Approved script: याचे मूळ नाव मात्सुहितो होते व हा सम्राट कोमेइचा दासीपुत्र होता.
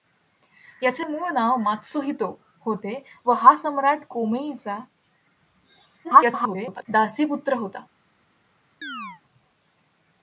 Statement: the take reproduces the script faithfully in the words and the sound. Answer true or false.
false